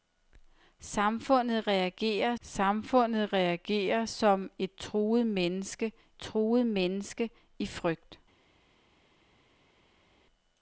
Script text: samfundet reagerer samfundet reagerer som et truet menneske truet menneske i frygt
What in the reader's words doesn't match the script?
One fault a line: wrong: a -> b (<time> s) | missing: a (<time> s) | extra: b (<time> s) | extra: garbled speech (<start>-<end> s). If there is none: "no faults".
no faults